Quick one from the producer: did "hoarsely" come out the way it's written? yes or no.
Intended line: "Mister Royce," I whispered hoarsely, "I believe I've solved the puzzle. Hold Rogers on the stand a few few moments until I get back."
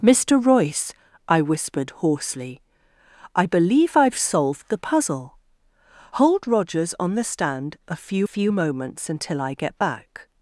yes